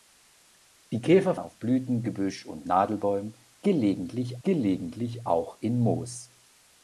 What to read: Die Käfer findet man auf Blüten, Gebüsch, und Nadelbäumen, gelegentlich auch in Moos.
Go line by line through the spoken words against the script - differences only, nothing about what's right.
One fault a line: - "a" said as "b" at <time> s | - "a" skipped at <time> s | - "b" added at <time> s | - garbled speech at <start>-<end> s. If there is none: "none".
- "findet man" skipped at 1.4 s
- "gelegentlich" added at 4.4 s